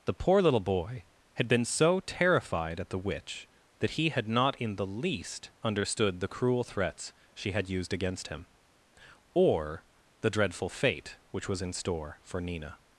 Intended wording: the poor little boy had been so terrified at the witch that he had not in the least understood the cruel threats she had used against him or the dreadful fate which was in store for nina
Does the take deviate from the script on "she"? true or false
false